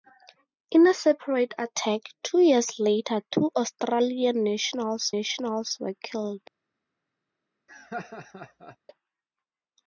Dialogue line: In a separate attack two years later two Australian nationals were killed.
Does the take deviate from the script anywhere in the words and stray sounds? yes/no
yes